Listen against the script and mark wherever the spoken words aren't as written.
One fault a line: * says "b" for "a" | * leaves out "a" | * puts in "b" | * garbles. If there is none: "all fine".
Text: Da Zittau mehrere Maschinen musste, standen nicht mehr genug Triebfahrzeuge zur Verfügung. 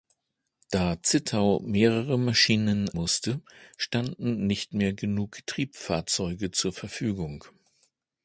all fine